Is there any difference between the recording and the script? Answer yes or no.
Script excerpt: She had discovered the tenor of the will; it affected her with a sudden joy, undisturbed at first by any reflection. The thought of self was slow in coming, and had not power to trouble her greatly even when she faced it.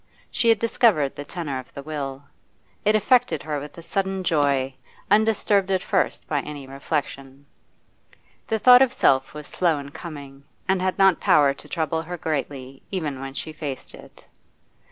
no